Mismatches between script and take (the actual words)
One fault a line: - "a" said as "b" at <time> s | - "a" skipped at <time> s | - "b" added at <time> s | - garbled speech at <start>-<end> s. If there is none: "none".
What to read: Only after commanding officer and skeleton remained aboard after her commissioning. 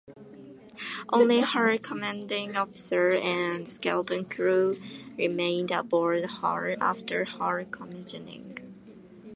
- "after" said as "her" at 1.4 s
- "crew" added at 4.2 s
- "her" added at 6.4 s